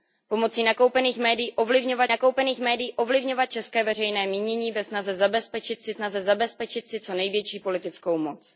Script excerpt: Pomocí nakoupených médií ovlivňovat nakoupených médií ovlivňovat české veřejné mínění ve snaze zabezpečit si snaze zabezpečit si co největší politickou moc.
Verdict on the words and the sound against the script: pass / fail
pass